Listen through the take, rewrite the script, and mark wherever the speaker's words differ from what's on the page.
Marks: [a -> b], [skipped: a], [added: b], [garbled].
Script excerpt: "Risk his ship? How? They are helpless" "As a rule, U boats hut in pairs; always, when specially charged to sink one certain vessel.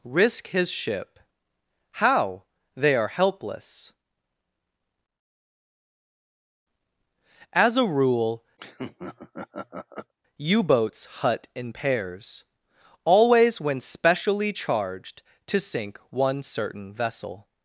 "Risk his ship? How? They are helpless" "As a rule, U boats hut in pairs; always, when specially charged to sink one certain vessel.